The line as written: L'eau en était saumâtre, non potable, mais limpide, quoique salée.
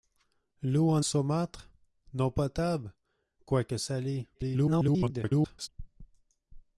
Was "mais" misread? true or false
true